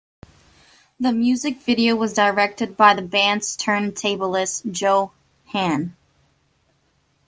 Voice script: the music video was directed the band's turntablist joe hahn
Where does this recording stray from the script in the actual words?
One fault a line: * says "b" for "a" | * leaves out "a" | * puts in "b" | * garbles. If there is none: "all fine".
* puts in "by"